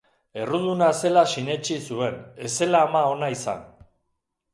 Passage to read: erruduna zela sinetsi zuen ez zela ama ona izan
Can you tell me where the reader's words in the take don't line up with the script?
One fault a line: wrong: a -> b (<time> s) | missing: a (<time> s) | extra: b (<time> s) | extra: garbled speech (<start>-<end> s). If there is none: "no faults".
no faults